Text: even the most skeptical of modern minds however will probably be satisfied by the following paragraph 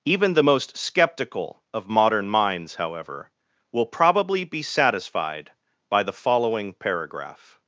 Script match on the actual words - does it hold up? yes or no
yes